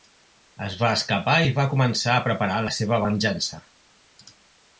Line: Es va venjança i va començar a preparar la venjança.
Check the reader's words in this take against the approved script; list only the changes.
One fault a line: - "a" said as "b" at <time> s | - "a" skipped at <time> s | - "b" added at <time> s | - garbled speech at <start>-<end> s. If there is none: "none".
- "venjança" said as "escapar" at 1.0 s
- "seva" added at 2.8 s